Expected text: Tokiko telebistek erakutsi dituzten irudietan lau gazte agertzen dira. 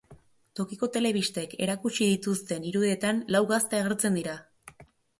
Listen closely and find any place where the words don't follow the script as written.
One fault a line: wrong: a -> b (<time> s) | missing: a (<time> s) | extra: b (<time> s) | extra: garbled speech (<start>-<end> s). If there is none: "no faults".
no faults